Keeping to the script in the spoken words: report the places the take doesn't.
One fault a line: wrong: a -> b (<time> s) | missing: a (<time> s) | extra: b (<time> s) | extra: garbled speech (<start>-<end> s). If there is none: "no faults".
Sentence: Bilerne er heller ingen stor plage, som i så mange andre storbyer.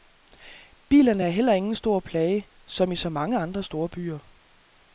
no faults